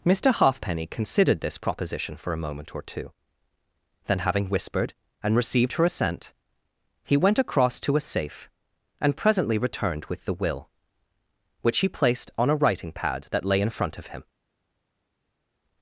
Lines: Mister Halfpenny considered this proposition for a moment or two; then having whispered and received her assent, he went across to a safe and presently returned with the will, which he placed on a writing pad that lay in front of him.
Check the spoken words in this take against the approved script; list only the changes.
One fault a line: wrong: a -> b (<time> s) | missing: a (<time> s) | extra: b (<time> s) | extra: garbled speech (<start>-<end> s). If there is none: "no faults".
no faults